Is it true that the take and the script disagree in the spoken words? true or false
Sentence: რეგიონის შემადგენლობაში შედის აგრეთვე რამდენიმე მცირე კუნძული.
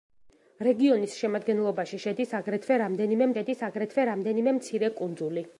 true